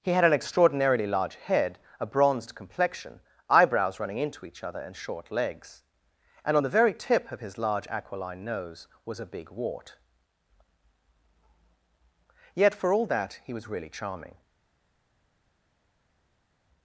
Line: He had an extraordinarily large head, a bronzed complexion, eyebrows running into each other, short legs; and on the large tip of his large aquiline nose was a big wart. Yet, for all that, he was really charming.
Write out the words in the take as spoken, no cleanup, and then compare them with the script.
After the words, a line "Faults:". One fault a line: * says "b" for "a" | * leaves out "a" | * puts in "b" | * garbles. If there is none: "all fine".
He had an extraordinarily large head, a bronzed complexion, eyebrows running into each other, and short legs; and on the very tip of his large aquiline nose was a big wart. Yet, for all that, he was really charming.
Faults:
* puts in "and"
* says "very" for "large"